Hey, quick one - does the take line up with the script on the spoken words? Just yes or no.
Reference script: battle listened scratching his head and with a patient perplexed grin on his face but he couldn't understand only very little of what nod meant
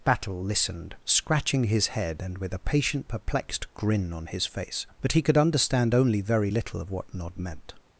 no